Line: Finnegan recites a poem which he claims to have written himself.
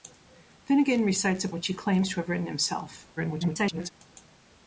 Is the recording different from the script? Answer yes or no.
yes